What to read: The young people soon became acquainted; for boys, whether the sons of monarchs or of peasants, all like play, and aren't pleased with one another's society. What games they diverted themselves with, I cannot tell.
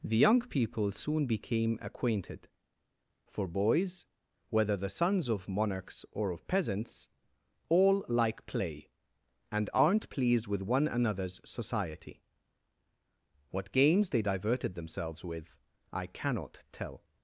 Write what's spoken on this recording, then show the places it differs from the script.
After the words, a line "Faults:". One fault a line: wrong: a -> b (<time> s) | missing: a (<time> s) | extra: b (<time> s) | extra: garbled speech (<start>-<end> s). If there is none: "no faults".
The young people soon became acquainted; for boys, whether the sons of monarchs or of peasants, all like play, and aren't pleased with one another's society. What games they diverted themselves with, I cannot tell.
Faults:
no faults